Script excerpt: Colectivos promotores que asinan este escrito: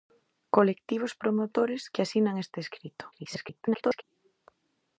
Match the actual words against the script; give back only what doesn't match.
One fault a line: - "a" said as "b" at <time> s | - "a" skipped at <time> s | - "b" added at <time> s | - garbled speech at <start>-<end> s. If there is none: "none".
- garbled speech at 3.1-4.0 s